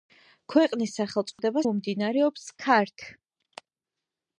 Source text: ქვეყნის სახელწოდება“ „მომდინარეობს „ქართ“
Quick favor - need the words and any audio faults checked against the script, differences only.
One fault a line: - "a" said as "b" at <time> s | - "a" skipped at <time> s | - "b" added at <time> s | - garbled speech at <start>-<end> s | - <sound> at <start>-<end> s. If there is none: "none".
- dropout at 1.3-1.4 s